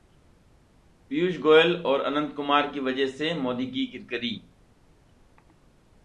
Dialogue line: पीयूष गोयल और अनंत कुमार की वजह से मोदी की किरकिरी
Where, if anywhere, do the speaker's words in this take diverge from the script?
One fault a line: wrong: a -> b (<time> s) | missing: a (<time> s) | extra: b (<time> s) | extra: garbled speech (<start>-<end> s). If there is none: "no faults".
no faults